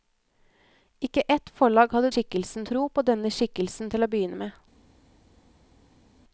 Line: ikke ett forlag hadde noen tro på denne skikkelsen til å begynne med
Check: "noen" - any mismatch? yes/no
yes